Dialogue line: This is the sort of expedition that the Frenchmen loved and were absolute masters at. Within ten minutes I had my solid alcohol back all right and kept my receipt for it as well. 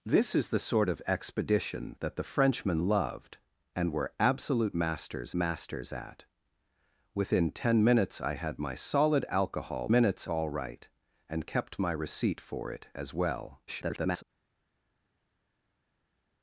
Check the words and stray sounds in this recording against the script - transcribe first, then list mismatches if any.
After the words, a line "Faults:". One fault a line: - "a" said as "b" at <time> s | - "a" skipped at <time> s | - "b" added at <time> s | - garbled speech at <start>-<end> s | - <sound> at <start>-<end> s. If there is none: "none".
This is the sort of expedition that the Frenchmen loved and were absolute masters masters at. Within ten minutes I had my solid alcohol minutes all right and kept my receipt for it as well. [garbled]
Faults:
- "masters" added at 5.3 s
- "back" said as "minutes" at 9.9 s
- garbled speech at 13.7-14.2 s